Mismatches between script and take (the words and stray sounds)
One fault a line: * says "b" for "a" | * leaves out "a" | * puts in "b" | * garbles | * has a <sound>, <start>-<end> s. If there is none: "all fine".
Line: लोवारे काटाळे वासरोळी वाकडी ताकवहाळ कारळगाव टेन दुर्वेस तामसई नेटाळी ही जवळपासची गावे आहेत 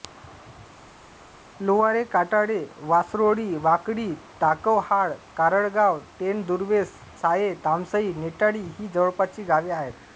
* puts in "साये"